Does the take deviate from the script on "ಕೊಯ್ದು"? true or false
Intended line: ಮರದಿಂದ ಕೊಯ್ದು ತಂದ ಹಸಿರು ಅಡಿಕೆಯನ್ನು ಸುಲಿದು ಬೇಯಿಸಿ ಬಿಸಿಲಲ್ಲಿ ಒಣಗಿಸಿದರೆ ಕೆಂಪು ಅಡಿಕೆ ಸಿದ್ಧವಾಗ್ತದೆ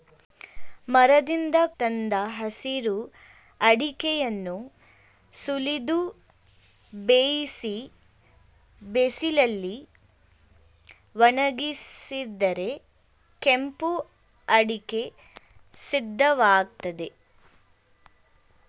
true